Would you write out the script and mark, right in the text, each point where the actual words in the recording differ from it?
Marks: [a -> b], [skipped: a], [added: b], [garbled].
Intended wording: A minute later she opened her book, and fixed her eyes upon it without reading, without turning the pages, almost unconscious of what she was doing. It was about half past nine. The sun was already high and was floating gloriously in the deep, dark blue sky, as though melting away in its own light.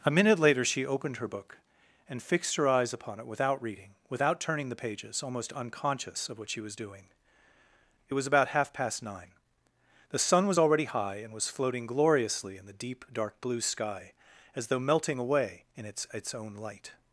A minute later she opened her book, and fixed her eyes upon it without reading, without turning the pages, almost unconscious of what she was doing. It was about half past nine. The sun was already high and was floating gloriously in the deep, dark blue sky, as though melting away in its [added: its] own light.